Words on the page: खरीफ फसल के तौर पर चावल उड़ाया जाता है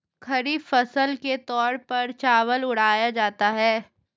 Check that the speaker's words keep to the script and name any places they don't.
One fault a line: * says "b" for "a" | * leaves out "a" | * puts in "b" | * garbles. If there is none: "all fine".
all fine